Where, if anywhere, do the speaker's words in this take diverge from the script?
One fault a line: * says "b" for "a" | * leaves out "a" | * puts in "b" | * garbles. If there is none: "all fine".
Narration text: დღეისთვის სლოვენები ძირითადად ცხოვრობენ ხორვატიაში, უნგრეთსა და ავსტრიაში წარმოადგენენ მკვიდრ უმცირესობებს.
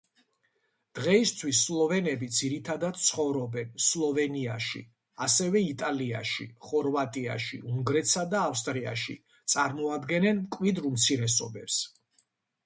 * puts in "სლოვენიაში ასევე იტალიაში"